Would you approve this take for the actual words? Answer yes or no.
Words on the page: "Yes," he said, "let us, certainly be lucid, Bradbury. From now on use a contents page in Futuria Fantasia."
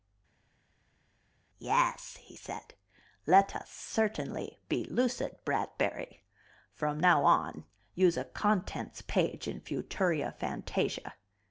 yes